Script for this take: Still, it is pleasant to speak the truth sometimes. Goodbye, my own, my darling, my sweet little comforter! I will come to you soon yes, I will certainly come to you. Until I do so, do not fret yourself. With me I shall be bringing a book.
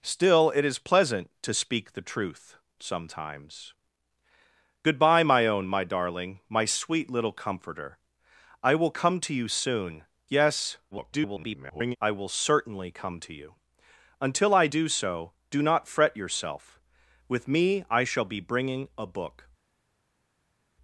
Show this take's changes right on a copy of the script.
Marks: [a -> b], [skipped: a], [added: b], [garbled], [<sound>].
Still, it is pleasant to speak the truth sometimes. Goodbye, my own, my darling, my sweet little comforter! I will come to you soon yes, [garbled] I will certainly come to you. Until I do so, do not fret yourself. With me I shall be bringing a book.